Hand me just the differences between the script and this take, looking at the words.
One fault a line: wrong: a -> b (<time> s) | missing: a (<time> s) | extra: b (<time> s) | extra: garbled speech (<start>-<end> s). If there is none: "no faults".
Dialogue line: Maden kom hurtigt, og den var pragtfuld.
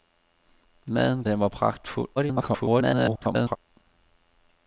missing: kom hurtigt og (1.2 s)
extra: garbled speech (2.2-3.6 s)